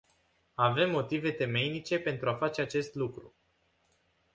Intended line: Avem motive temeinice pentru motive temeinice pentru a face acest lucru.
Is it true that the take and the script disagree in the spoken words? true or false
true